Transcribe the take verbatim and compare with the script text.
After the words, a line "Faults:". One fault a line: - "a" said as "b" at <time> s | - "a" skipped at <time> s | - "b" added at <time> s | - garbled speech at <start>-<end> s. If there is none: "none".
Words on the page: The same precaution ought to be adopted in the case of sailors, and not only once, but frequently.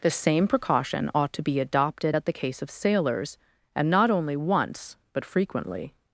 The same precaution ought to be adopted at the case of sailors, and not only once, but frequently.
Faults:
- "in" said as "at" at 2.1 s